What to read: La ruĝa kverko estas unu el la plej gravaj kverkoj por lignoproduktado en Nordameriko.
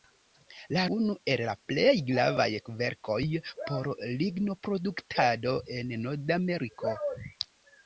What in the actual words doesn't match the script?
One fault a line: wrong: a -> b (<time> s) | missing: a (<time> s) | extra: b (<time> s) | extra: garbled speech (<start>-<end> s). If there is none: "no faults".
missing: ruĝa kverko estas (0.8 s)